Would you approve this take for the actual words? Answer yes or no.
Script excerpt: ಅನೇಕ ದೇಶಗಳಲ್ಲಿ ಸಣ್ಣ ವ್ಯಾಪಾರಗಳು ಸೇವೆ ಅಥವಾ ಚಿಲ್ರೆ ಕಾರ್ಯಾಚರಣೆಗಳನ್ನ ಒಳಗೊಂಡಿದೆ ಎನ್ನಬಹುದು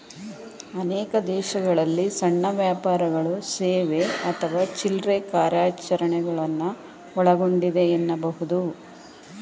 yes